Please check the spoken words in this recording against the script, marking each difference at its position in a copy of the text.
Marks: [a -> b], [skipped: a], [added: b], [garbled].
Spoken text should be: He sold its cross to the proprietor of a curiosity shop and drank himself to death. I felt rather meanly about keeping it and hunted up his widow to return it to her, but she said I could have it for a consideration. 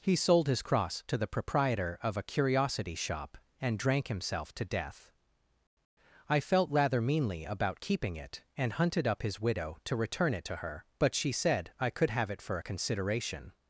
He sold [its -> his] cross to the proprietor of a curiosity shop and drank himself to death. I felt rather meanly about keeping it and hunted up his widow to return it to her, but she said I could have it for a consideration.